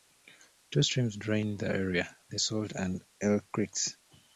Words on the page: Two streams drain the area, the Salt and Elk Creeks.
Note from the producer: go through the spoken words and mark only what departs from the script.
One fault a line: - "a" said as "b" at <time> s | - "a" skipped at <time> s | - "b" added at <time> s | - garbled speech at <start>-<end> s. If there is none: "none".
none